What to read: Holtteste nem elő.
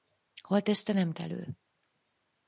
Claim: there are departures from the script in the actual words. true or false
false